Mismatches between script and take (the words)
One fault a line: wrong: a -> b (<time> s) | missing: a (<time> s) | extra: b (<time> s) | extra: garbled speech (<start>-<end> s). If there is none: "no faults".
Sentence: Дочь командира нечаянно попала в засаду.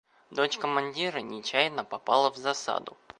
no faults